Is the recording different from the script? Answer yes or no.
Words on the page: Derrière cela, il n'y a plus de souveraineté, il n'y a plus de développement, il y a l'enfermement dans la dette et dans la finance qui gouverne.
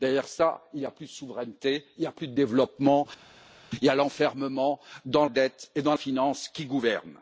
yes